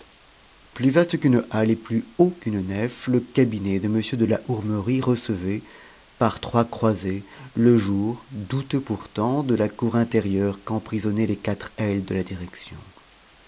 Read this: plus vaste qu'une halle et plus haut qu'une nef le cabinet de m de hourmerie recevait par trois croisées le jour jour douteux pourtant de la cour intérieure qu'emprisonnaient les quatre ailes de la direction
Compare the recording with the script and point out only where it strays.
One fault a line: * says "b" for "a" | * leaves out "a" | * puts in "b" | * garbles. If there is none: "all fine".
* puts in "la"
* leaves out "jour"